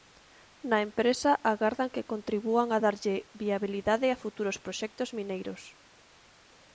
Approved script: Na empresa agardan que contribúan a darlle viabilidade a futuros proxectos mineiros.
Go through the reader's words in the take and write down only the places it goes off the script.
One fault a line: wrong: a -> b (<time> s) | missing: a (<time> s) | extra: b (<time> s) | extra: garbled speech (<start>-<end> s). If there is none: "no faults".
no faults